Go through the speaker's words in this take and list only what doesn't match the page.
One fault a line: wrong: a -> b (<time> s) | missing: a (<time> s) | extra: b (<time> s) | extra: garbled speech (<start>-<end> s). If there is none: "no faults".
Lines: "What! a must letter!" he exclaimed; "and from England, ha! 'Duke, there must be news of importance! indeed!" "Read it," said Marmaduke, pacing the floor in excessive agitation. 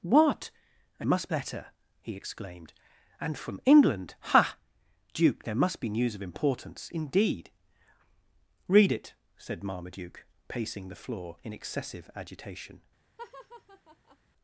no faults